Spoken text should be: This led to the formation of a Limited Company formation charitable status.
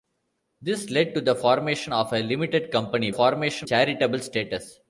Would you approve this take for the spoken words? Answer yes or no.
yes